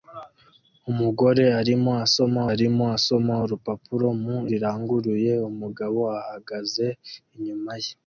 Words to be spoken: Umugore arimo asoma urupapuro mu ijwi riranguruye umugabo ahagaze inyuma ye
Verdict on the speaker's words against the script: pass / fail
fail